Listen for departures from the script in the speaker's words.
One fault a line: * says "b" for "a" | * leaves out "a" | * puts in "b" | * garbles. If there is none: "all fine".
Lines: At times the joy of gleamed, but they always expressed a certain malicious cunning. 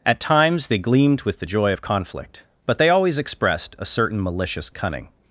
* puts in "they gleamed with"
* says "conflict" for "gleamed"